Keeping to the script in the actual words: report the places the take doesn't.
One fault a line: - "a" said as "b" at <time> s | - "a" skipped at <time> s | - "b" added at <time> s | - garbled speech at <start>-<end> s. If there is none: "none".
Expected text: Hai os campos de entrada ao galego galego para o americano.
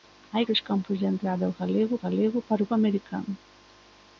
none